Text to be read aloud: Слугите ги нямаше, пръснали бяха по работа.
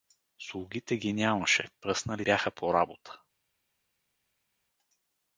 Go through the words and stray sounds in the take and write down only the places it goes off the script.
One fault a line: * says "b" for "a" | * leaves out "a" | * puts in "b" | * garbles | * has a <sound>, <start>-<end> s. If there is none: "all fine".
all fine